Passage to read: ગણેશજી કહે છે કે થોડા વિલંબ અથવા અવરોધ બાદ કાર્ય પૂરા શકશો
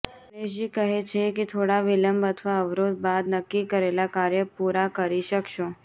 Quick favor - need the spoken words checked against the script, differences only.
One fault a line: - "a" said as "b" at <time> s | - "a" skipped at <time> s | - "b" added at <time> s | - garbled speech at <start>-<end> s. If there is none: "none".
- "નક્કી કરેલા" added at 3.3 s
- "કરી" added at 5.0 s